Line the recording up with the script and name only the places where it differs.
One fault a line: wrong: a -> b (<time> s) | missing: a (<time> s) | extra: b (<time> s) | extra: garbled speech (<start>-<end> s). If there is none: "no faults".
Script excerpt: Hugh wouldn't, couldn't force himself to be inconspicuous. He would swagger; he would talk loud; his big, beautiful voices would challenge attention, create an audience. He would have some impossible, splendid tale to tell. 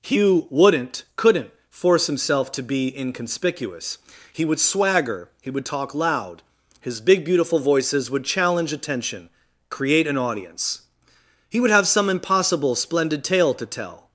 no faults